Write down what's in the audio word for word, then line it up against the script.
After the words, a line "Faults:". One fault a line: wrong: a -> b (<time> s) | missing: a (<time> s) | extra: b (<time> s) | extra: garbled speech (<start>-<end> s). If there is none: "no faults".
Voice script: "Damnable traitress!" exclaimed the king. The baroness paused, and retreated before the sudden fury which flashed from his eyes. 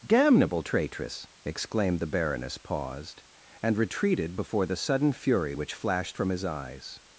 "Damnable traitress!" exclaimed. The baroness paused, and retreated before the sudden fury which flashed from his eyes.
Faults:
missing: king The (2.1 s)